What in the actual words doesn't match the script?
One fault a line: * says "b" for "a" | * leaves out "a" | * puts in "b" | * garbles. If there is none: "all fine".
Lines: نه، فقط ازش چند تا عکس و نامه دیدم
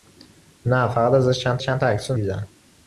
* puts in "چند"
* leaves out "نامه"